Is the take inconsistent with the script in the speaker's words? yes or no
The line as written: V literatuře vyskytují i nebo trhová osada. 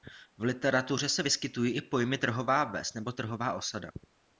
yes